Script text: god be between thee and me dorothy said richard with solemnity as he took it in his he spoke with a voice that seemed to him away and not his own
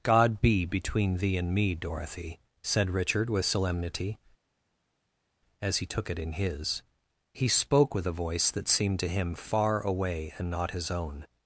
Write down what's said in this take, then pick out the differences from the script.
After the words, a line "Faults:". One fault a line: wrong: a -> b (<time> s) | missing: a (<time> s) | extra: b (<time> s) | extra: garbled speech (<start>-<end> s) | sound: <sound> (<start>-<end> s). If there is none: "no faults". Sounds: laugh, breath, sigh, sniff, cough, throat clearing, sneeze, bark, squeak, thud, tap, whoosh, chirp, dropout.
god be between thee and me dorothy said richard with solemnity as he took it in his he spoke with a voice that seemed to him far away and not his own
Faults:
extra: far (9.3 s)